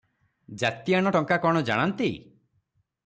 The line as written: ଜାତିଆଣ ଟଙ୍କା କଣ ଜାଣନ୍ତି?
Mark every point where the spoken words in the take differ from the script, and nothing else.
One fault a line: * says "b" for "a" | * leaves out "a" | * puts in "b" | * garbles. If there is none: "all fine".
all fine